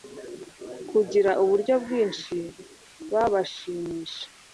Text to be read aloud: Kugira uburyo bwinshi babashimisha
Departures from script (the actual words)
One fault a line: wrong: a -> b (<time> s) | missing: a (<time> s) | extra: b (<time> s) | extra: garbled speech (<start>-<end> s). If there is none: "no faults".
no faults